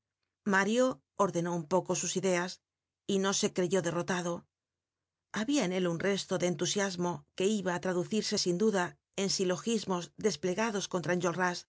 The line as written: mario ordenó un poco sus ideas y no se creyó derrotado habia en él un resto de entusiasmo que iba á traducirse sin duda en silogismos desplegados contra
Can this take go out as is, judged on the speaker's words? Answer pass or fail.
pass